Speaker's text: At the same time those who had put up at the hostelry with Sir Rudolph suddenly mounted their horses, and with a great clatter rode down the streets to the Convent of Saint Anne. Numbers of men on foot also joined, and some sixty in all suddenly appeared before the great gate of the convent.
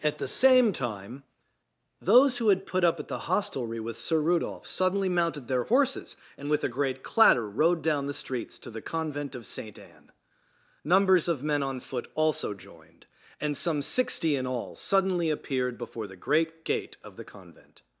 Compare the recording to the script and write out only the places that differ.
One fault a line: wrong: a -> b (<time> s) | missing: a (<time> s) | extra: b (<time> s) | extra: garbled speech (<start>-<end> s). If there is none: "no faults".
no faults